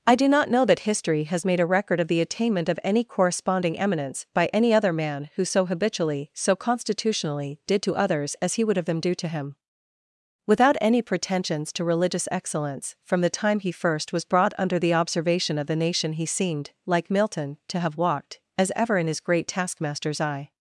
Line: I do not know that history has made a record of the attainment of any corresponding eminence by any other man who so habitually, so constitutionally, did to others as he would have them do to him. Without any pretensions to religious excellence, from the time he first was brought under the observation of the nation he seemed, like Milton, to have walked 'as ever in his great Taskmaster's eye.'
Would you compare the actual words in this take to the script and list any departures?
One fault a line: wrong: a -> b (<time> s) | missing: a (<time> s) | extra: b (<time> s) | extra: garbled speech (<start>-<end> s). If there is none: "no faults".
no faults